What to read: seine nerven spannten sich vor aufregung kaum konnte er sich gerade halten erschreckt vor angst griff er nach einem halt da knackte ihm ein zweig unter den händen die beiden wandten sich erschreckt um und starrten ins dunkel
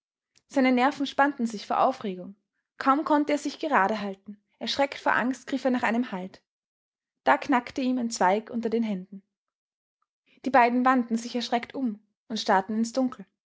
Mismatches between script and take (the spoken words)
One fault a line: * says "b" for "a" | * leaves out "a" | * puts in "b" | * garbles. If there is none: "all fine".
all fine